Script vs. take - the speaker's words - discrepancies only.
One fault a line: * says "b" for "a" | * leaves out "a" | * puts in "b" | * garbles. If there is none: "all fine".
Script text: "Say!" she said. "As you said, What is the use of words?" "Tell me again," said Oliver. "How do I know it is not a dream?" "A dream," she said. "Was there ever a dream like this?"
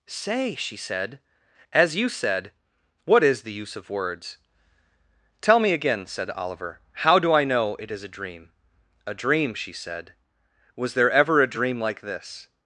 * leaves out "not"